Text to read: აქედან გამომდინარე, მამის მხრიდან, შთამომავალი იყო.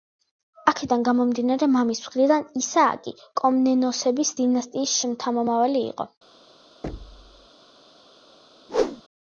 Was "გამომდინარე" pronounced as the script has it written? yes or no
yes